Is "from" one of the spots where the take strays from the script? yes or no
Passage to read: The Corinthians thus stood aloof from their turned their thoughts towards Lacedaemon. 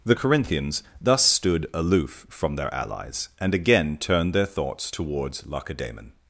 no